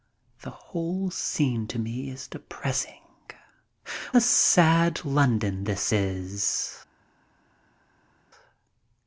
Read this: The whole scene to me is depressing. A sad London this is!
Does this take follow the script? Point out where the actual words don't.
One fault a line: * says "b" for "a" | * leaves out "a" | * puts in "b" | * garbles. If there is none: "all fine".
all fine